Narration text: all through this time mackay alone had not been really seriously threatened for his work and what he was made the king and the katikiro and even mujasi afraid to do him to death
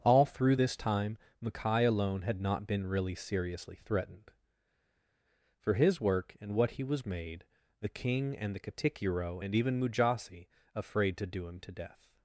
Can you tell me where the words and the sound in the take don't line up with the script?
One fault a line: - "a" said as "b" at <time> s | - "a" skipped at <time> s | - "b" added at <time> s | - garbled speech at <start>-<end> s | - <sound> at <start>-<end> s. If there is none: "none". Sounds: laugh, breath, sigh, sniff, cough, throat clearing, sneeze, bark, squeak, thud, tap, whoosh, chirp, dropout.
none